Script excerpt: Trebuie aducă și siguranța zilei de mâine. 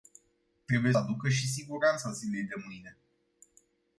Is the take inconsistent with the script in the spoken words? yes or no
no